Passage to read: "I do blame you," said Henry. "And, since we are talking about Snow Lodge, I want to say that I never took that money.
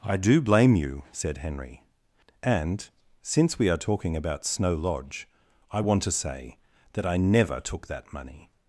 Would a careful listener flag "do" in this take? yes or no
no